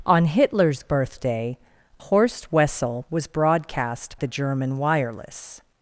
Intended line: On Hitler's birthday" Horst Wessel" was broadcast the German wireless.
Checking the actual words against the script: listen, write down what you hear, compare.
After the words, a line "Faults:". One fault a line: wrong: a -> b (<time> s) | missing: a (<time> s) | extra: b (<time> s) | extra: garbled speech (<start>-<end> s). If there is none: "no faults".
On Hitler's birthday" Horst Wessel" was broadcast the German wireless.
Faults:
no faults